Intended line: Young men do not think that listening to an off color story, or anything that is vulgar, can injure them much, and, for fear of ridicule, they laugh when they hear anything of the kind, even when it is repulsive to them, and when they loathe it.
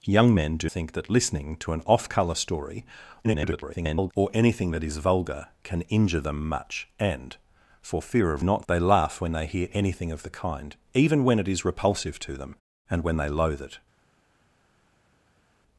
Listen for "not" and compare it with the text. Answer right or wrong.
wrong